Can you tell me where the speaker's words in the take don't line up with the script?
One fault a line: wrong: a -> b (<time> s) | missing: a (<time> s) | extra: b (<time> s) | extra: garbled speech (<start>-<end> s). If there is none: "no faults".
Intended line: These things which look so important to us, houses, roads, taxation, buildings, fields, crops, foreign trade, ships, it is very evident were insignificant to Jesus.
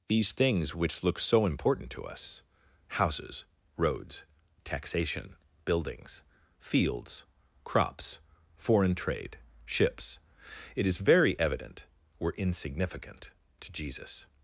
no faults